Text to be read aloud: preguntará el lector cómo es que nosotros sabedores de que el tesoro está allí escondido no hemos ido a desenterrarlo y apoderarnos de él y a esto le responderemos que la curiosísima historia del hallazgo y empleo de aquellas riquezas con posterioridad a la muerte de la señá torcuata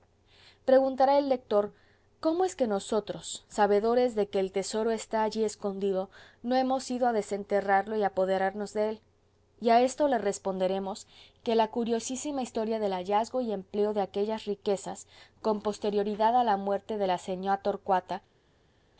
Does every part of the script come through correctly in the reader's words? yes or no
yes